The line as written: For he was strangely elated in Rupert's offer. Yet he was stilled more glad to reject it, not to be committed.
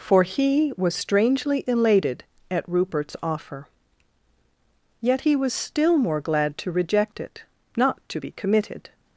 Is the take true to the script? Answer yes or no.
no